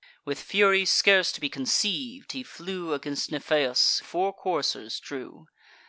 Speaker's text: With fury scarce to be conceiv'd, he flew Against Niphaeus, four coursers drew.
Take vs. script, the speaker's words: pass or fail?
pass